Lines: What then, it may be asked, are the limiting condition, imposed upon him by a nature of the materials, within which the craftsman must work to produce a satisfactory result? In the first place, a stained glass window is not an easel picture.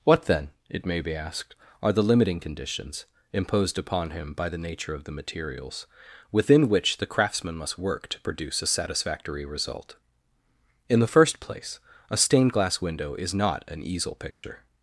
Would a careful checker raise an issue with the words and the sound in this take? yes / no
yes